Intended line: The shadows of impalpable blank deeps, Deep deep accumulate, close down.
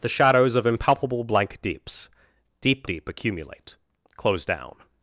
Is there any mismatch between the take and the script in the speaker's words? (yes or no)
no